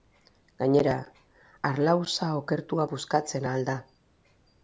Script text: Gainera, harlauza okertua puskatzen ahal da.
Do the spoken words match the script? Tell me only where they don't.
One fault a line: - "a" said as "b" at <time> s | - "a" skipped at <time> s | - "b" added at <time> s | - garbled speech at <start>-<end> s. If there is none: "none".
none